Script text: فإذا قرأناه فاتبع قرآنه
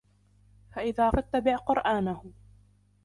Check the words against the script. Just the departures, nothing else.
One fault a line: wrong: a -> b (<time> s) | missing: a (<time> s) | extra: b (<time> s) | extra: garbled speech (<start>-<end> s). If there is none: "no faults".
missing: قرأناه (1.1 s)